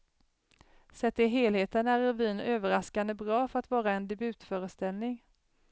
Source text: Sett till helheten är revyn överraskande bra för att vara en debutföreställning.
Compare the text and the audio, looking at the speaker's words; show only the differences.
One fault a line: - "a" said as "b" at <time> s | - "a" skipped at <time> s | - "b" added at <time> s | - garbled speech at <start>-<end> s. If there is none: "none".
none